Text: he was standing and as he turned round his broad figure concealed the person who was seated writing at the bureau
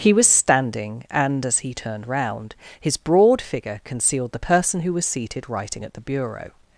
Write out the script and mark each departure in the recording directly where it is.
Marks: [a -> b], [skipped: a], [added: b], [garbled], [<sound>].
he was standing and as he turned round his broad figure concealed the person who was seated writing at the bureau